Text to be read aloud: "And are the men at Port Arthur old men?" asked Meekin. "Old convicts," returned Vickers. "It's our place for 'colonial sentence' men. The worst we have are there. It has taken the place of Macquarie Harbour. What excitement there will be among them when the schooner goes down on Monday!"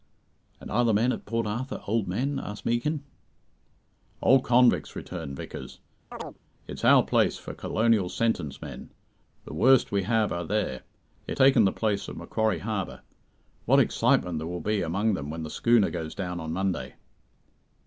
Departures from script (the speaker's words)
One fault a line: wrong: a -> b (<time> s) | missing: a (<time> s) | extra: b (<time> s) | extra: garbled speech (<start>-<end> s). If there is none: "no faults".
missing: has (11.4 s)